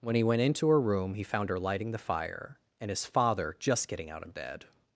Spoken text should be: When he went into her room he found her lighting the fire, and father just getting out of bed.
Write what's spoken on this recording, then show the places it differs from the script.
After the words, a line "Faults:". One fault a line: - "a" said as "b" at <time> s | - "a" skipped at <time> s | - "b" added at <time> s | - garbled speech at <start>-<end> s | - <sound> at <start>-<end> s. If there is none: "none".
When he went into her room he found her lighting the fire, and his father just getting out of bed.
Faults:
- "his" added at 2.9 s